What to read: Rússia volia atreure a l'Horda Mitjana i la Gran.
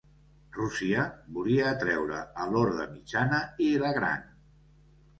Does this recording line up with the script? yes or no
yes